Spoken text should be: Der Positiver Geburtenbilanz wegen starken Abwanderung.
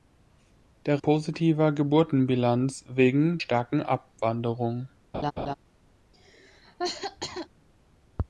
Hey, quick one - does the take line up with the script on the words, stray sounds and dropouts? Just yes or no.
no